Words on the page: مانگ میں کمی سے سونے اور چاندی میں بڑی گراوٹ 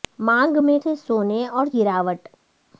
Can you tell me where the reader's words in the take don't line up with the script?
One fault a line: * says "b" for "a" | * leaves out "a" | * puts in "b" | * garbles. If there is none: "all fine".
* leaves out "کمی"
* leaves out "چاندی میں بڑی"